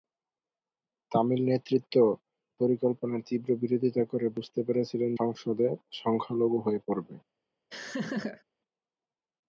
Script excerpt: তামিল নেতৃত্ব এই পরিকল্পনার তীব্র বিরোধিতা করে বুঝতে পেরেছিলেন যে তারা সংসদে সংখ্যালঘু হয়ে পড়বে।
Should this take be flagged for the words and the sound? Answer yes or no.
yes